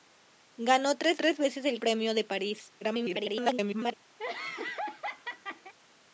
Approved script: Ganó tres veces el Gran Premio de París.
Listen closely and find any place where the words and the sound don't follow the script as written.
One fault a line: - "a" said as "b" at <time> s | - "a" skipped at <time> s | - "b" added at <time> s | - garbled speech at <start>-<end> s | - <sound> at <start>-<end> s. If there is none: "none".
- "tres" added at 1.2 s
- "Gran" skipped at 1.8 s
- garbled speech at 2.8-3.9 s
- laugh at 4.2-5.7 s